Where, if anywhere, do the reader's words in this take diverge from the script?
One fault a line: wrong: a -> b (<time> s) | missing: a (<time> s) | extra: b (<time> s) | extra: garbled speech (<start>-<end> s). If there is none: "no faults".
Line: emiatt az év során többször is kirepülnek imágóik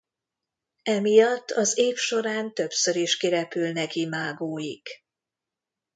no faults